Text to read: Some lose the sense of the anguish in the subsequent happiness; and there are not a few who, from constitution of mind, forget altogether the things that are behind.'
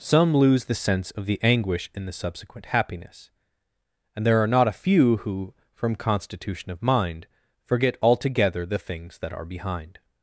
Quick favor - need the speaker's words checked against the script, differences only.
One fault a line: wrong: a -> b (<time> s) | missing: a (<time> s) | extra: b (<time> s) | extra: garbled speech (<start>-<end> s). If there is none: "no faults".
no faults